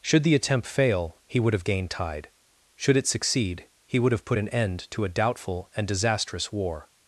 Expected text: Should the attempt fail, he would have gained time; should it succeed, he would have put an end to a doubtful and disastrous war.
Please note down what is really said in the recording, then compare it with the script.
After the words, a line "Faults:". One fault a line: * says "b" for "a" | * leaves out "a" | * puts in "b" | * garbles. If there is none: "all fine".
Should the attempt fail, he would have gained tide; should it succeed, he would have put an end to a doubtful and disastrous war.
Faults:
* says "tide" for "time"